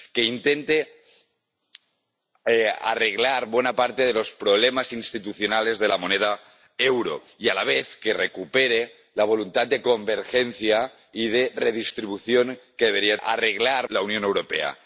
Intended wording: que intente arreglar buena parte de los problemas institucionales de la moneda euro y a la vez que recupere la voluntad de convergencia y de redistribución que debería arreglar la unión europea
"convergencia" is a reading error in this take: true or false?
false